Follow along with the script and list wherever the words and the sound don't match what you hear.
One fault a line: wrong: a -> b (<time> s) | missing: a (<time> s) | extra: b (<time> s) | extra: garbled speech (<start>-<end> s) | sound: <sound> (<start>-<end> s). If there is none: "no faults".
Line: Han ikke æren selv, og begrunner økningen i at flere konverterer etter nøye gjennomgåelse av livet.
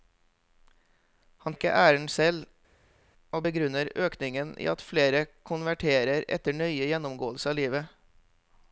no faults